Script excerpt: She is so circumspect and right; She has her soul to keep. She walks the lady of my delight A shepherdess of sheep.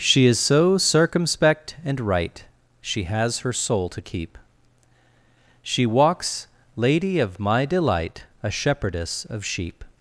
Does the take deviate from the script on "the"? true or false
true